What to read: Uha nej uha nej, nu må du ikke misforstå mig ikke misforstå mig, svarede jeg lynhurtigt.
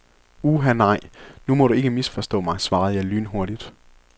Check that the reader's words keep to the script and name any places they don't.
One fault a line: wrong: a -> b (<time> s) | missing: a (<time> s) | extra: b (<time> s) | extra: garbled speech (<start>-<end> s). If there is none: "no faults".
missing: uha nej (1.0 s)
missing: ikke misforstå mig (2.6 s)